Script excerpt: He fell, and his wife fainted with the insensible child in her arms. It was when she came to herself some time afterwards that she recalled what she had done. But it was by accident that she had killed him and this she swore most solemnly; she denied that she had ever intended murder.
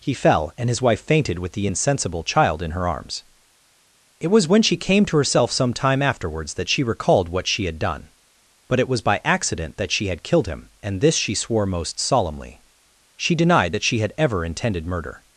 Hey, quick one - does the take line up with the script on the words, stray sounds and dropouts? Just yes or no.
yes